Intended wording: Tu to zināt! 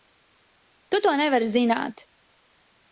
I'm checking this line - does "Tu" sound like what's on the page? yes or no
yes